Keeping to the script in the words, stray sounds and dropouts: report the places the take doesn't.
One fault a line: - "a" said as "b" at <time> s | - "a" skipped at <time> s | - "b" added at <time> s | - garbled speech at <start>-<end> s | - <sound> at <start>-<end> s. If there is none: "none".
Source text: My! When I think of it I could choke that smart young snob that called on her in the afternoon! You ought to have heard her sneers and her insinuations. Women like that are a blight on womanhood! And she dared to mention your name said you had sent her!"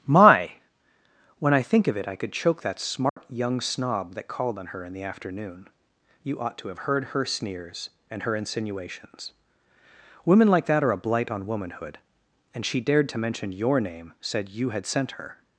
- dropout at 3.1-3.2 s